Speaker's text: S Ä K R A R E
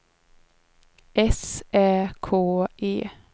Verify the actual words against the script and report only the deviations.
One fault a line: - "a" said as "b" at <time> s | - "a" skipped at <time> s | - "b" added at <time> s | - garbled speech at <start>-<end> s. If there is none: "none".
- "R A R" skipped at 2.3 s